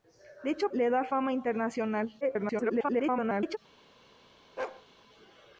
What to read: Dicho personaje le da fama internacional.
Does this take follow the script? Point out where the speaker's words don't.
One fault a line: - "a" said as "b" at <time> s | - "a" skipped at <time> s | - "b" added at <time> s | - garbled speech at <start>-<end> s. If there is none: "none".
- "personaje" skipped at 0.7 s
- garbled speech at 2.2-3.6 s